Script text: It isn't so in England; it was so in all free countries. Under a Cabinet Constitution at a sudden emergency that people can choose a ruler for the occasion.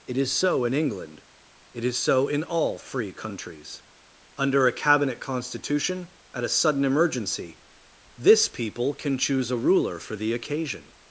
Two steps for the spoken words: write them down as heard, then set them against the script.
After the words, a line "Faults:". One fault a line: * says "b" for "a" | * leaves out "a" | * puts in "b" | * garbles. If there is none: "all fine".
It is so in England; it is so in all free countries. Under a Cabinet Constitution at a sudden emergency this people can choose a ruler for the occasion.
Faults:
* says "is" for "isn't"
* says "is" for "was"
* says "this" for "that"